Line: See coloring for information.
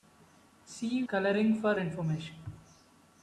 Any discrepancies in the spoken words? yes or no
no